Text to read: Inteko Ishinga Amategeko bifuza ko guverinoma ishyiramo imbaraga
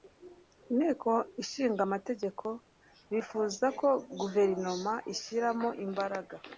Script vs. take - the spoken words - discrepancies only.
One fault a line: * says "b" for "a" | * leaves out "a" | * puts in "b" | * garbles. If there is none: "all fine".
all fine